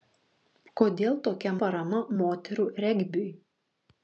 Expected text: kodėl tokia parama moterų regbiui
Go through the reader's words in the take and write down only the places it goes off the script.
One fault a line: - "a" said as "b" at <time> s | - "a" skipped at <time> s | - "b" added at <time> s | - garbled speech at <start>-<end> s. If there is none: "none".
none